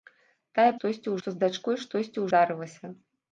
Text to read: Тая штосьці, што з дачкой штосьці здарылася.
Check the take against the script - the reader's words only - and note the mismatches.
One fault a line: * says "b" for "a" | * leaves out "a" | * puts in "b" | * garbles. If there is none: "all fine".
all fine